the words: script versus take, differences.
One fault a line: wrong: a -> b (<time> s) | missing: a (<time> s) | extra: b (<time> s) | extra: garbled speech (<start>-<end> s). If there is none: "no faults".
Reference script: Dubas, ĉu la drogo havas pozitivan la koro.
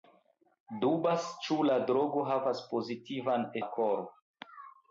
no faults